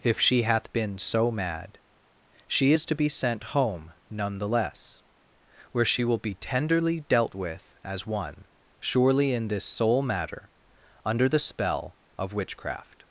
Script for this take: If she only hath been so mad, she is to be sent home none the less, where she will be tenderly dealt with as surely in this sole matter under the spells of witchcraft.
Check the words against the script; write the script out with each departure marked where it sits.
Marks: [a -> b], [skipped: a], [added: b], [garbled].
If she [skipped: only] hath been so mad, she is to be sent home none the less, where she will be tenderly dealt with as [added: one] surely in this sole matter under the [spells -> spell] of witchcraft.